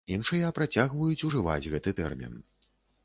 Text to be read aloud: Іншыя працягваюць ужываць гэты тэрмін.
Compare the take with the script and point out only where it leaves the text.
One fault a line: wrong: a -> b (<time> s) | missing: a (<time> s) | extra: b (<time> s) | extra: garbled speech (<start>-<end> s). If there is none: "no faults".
no faults